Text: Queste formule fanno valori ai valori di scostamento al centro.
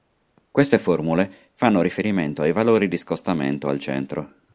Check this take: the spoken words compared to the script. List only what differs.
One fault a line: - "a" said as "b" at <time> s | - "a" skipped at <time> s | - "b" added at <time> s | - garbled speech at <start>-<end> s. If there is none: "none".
- "valori" said as "riferimento" at 1.8 s